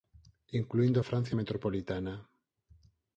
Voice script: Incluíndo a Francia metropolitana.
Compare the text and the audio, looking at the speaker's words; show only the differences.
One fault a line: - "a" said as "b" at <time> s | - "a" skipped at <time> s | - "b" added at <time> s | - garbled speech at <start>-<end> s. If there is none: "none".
none